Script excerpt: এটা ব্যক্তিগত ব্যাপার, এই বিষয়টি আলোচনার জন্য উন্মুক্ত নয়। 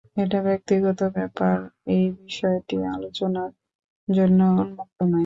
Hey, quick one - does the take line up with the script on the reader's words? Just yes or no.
yes